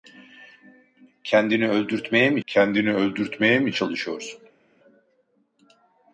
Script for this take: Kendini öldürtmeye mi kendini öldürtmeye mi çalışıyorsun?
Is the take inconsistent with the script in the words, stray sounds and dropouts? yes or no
no